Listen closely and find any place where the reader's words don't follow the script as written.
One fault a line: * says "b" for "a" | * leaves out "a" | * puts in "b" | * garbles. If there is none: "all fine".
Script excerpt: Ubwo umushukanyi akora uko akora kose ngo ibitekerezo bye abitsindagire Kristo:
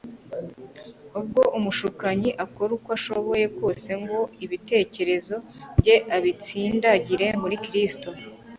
* says "ashoboye" for "akora"
* puts in "muri"